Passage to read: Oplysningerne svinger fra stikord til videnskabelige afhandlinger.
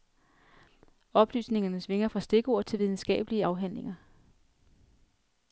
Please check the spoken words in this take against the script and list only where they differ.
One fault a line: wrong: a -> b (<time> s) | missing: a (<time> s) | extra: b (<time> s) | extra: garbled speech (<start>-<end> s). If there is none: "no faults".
no faults